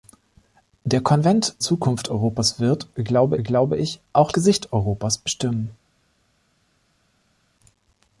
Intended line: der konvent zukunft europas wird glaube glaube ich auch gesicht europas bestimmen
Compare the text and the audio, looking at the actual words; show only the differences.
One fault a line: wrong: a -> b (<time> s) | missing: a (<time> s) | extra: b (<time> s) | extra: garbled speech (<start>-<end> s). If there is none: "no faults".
no faults